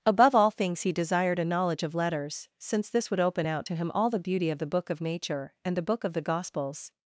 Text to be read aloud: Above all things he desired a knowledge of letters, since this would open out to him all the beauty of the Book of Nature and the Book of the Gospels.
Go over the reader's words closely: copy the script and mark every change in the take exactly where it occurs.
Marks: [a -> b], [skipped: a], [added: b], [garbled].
Above all things he desired a knowledge of letters, since this would open out to him all the beauty of the Book of Nature and the Book of the Gospels.